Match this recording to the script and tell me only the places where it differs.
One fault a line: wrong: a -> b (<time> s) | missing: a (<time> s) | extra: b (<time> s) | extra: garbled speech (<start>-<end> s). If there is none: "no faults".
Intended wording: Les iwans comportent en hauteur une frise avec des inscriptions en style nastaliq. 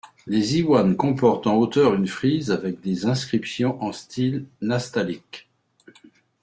no faults